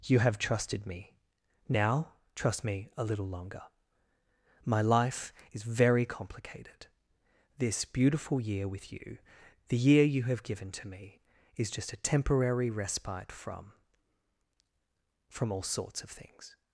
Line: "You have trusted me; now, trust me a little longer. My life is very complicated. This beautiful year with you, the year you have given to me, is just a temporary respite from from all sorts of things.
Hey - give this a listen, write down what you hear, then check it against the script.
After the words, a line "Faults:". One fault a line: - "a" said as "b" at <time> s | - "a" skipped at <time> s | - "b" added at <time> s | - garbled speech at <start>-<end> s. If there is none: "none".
"You have trusted me; now, trust me a little longer. My life is very complicated. This beautiful year with you, the year you have given to me, is just a temporary respite from from all sorts of things.
Faults:
none